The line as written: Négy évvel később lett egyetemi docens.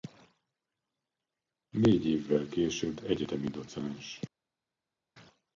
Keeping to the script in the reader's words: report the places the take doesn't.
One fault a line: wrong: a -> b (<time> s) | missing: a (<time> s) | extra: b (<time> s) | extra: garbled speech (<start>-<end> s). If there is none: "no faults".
missing: lett (3.0 s)